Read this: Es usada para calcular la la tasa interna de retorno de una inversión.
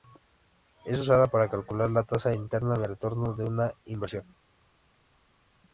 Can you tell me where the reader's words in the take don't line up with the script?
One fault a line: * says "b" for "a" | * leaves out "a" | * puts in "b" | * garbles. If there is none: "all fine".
* leaves out "la"